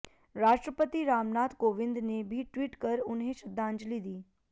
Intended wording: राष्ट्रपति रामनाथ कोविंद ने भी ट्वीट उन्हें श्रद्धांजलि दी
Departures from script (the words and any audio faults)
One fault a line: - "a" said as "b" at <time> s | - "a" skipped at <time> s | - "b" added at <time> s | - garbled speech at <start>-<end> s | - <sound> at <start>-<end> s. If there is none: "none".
- "कर" added at 2.8 s